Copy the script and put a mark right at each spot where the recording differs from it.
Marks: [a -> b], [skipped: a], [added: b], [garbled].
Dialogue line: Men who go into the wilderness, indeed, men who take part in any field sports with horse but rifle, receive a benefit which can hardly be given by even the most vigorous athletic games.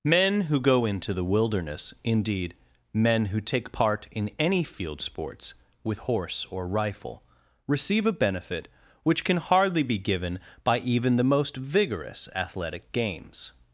Men who go into the wilderness, indeed, men who take part in any field sports with horse [but -> or] rifle, receive a benefit which can hardly be given by even the most vigorous athletic games.